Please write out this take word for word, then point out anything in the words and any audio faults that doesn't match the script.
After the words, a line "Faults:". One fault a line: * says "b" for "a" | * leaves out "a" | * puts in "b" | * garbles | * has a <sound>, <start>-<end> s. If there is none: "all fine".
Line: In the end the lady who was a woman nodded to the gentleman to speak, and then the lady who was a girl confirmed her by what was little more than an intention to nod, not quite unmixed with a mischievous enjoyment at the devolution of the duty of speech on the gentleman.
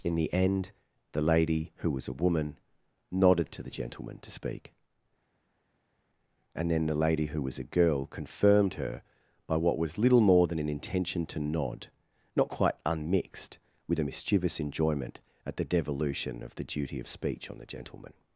In the end the lady who was a woman nodded to the gentleman to speak, and then the lady who was a girl confirmed her by what was little more than an intention to nod, not quite unmixed with a mischievous enjoyment at the devolution of the duty of speech on the gentleman.
Faults:
all fine